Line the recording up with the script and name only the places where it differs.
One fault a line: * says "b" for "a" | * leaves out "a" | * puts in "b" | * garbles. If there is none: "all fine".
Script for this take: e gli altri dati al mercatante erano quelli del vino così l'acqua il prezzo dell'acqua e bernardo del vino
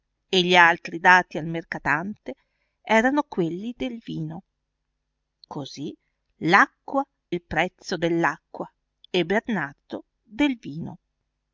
all fine